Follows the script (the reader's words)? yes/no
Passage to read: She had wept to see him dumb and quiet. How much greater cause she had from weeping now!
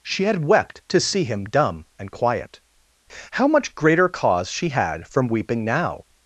yes